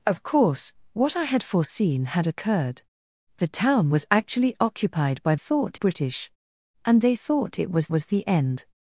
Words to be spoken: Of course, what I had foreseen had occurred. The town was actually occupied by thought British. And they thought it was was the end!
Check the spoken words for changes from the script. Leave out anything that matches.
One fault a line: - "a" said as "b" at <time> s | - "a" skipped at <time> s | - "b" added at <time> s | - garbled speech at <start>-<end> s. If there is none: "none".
none